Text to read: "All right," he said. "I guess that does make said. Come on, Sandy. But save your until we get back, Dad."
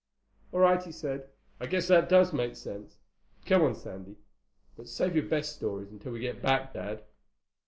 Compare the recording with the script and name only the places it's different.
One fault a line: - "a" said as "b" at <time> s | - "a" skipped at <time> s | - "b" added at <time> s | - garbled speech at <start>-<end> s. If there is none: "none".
- "said" said as "sense" at 2.5 s
- "best stories" added at 5.3 s